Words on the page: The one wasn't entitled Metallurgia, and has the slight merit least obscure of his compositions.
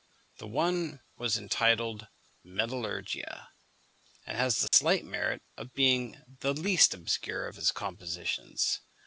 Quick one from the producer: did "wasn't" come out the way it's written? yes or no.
no